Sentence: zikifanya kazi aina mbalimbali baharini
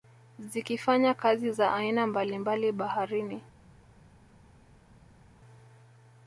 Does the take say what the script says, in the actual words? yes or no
no